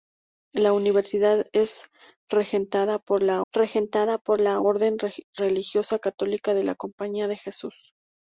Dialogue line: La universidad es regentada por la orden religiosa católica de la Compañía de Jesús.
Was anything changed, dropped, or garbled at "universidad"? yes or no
no